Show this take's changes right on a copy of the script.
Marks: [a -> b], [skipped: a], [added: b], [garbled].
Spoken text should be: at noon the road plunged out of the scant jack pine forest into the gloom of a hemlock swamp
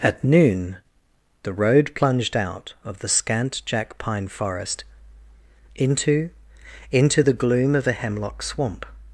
at noon the road plunged out of the scant jack pine forest into [added: into] the gloom of a hemlock swamp